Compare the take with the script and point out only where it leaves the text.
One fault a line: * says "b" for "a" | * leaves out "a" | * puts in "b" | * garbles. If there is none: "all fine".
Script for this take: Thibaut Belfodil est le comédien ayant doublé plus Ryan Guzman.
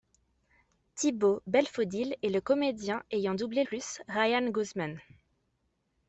all fine